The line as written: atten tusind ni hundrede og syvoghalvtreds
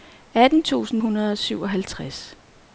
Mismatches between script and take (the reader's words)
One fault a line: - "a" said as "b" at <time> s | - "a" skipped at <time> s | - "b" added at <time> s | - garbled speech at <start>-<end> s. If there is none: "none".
- "ni" skipped at 1.0 s